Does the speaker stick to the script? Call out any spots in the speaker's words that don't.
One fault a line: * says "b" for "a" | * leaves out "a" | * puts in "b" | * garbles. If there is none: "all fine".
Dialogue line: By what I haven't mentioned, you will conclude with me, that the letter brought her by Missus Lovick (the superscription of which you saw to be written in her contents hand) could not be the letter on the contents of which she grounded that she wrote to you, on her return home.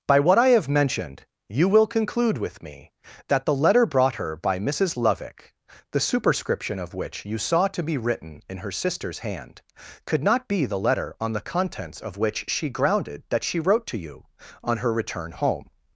* says "have" for "haven't"
* says "sister's" for "contents"